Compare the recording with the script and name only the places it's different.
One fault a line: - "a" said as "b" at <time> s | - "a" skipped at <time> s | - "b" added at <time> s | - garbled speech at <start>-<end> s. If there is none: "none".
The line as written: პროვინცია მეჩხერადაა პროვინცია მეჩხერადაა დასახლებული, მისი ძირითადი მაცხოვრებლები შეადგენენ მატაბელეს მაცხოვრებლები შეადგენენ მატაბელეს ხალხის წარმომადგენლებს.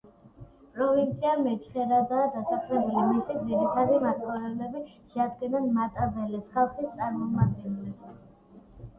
- "პროვინცია მეჩხერადაა" skipped at 2.3 s
- "მაცხოვრებლები შეადგენენ მატაბელეს" skipped at 6.5 s